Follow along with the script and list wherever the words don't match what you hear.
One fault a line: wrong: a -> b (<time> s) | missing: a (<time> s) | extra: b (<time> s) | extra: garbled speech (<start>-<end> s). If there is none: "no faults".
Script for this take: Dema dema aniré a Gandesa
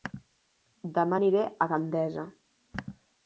missing: dema (1.2 s)